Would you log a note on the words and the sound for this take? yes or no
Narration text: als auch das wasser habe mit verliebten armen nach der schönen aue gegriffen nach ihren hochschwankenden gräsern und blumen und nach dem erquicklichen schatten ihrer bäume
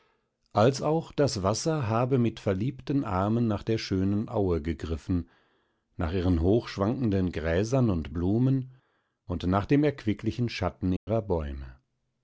yes